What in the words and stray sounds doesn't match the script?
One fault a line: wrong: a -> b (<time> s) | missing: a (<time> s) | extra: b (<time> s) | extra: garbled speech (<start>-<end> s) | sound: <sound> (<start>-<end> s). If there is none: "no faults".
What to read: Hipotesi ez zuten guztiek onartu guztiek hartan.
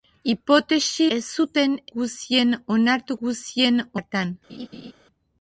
sound: laugh (4.5-4.9 s)